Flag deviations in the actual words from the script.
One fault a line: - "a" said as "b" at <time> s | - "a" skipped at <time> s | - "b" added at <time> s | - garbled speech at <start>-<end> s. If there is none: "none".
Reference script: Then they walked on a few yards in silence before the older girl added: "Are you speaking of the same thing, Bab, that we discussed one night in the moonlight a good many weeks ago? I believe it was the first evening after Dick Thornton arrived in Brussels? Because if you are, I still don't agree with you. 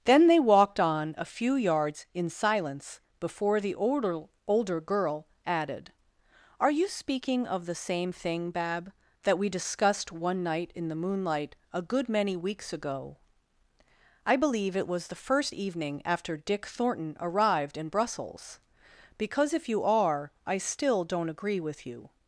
- "older" added at 4.5 s